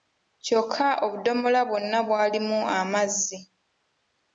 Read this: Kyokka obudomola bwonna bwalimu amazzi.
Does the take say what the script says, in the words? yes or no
yes